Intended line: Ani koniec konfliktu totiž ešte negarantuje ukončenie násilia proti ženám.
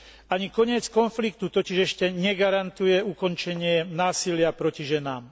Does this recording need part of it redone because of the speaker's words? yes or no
no